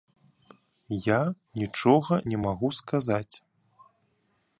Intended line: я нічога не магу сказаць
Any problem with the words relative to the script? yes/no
no